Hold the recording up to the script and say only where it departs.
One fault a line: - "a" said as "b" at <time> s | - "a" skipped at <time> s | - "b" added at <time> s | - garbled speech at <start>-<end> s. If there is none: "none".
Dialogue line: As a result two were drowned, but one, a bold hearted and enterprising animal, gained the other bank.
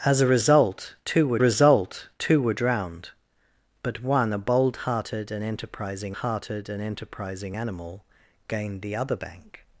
- "result two were" added at 1.4 s
- "hearted and enterprising" added at 6.1 s